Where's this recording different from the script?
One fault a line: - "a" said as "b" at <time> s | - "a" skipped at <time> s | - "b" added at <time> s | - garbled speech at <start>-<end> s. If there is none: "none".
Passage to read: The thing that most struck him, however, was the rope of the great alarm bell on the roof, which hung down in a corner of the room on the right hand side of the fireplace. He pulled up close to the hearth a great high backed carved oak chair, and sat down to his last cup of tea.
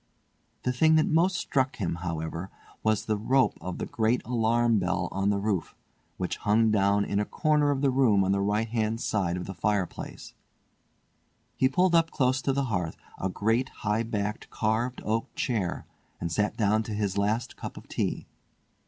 none